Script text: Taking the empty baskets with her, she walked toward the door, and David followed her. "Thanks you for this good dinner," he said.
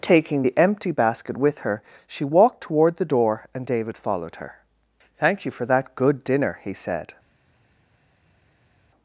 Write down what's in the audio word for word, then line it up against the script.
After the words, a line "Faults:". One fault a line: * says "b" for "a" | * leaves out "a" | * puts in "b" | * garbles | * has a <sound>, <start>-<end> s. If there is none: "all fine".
Taking the empty basket with her, she walked toward the door, and David followed her. "Thank you for that good dinner," he said.
Faults:
* says "basket" for "baskets"
* says "Thank" for "Thanks"
* says "that" for "this"